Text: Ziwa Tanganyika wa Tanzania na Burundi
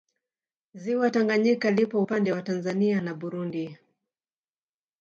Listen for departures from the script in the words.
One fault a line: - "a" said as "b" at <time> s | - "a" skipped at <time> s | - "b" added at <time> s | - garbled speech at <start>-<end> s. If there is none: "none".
- "lipo upande" added at 1.7 s